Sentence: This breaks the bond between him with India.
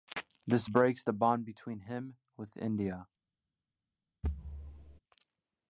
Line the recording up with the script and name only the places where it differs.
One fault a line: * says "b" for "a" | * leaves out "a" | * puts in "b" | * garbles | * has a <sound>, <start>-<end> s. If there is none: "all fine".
* has a thud, 4.2-5.0 s